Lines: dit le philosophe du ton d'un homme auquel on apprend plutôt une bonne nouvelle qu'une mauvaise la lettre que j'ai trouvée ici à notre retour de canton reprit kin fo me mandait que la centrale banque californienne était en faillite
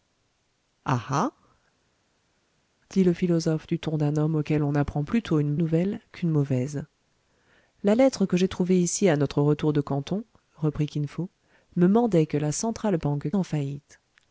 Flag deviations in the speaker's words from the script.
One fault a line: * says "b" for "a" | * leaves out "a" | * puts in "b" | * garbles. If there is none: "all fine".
* leaves out "bonne"
* leaves out "californienne était"